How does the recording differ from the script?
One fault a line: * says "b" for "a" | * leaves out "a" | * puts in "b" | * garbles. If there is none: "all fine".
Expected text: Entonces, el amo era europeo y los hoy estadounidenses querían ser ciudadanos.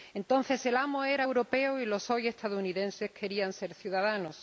all fine